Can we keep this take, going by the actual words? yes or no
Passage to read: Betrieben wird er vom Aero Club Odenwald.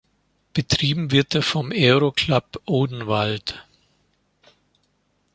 yes